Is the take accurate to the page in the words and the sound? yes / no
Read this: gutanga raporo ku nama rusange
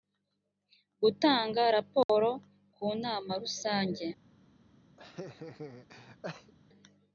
no